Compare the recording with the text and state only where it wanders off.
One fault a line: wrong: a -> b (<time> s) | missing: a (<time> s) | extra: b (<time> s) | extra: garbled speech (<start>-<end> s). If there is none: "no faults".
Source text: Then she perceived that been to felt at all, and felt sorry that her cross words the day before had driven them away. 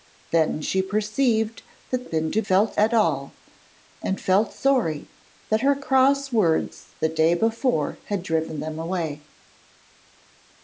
no faults